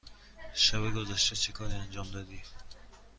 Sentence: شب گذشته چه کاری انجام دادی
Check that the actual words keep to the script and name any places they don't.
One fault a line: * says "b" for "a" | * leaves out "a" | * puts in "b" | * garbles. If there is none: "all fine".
all fine